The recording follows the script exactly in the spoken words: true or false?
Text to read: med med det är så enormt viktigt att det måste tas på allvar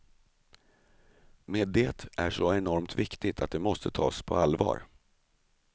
false